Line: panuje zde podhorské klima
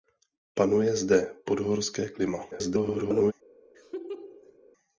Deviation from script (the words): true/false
true